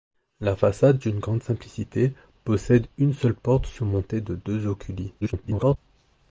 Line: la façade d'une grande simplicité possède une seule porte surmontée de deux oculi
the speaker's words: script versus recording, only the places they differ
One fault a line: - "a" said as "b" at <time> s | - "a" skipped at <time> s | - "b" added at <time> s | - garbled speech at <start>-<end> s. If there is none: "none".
- garbled speech at 5.2-5.8 s